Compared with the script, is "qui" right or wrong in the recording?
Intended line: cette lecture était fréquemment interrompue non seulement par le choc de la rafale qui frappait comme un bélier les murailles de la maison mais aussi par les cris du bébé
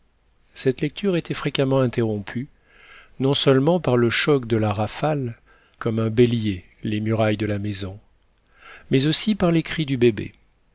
wrong